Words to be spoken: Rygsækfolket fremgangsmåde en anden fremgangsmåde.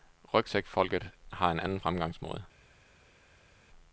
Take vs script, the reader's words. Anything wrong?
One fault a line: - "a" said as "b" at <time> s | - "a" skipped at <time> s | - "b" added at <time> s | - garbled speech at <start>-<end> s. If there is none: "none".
- "fremgangsmåde" said as "har" at 1.3 s